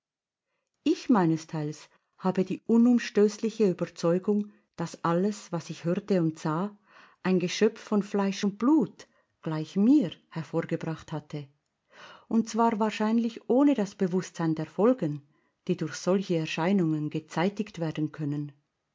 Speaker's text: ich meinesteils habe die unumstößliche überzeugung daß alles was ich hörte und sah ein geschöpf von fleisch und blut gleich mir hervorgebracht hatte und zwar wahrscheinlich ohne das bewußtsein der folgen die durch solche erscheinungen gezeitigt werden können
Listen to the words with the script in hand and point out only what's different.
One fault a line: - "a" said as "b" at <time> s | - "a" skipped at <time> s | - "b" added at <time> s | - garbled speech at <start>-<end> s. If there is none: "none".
none